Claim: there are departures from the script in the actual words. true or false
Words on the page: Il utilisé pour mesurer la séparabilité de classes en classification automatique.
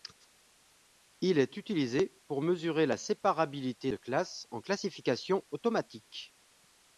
true